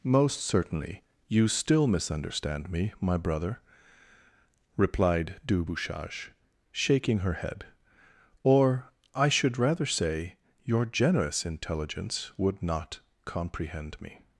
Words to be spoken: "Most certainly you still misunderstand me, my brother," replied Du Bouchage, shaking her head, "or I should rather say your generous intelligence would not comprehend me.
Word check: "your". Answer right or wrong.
right